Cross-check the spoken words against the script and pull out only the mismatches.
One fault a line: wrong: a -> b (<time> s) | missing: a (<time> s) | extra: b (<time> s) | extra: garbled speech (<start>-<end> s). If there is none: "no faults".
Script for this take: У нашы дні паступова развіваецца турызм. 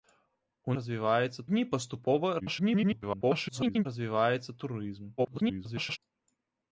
wrong: нашы -> развіваецца (0.8 s)
extra: garbled speech (2.4-3.9 s)
extra: garbled speech (5.2-6.0 s)